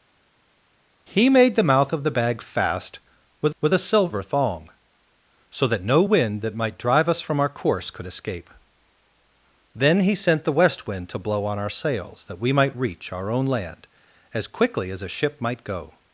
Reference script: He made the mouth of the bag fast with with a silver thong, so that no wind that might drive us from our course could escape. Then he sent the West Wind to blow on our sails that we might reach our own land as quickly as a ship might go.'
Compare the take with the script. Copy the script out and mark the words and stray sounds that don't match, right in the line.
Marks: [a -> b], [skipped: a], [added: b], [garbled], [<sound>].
He made the mouth of the bag fast with with a silver thong, so that no wind that might drive us from our course could escape. Then he sent the West Wind to blow on our sails that we might reach our own land as quickly as a ship might go.'